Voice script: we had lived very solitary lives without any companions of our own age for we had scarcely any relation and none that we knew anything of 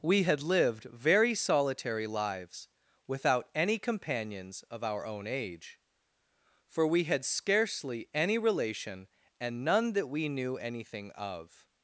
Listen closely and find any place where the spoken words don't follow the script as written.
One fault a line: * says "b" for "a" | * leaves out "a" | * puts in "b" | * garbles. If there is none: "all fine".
all fine